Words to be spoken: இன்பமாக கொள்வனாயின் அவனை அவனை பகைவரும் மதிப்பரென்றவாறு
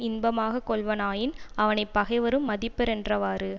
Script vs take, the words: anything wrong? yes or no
yes